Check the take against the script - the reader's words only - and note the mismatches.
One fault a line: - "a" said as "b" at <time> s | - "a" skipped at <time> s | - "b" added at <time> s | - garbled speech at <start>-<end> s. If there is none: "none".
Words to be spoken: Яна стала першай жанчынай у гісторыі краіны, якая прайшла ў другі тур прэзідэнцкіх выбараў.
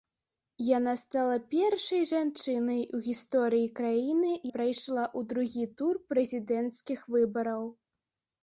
- "якая" skipped at 4.3 s